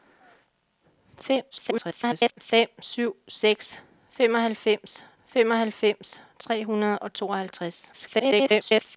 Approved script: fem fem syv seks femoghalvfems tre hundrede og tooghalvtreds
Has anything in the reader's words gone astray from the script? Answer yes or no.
yes